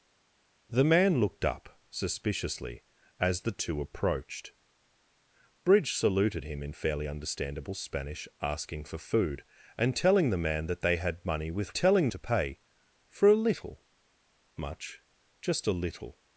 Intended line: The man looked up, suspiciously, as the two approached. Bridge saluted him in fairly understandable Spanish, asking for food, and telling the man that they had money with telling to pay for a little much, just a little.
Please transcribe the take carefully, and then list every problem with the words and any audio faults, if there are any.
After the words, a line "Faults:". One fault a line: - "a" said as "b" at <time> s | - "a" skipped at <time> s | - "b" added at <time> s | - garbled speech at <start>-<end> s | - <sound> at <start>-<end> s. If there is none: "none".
The man looked up, suspiciously, as the two approached. Bridge saluted him in fairly understandable Spanish, asking for food, and telling the man that they had money with telling to pay for a little much, just a little.
Faults:
none